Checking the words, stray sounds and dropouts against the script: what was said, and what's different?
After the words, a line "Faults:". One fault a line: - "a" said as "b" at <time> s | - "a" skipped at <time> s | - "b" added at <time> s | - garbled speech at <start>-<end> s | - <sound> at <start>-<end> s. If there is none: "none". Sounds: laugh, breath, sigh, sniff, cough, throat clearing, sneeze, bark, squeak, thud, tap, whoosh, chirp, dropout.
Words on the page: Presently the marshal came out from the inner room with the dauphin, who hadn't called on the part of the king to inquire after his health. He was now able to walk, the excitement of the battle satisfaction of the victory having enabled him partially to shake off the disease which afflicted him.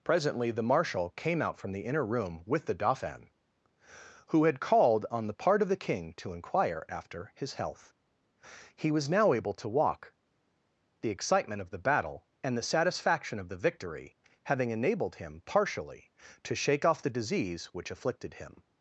Presently the marshal came out from the inner room with the dauphin, who had called on the part of the king to inquire after his health. He was now able to walk, the excitement of the battle and the satisfaction of the victory having enabled him partially to shake off the disease which afflicted him.
Faults:
- "hadn't" said as "had" at 4.5 s
- "and the" added at 12.4 s